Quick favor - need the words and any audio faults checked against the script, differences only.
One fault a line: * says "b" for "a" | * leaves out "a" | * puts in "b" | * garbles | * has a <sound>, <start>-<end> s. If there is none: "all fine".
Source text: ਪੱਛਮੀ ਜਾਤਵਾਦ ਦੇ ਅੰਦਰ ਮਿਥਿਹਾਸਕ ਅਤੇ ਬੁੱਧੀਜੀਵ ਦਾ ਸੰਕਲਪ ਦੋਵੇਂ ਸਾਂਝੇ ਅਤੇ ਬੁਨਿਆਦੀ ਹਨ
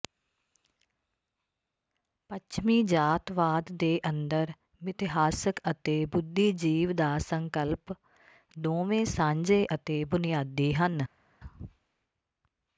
all fine